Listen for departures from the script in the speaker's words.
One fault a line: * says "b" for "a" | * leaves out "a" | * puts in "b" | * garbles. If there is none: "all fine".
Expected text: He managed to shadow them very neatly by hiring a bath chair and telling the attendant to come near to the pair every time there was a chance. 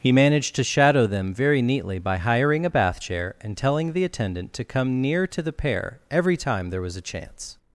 all fine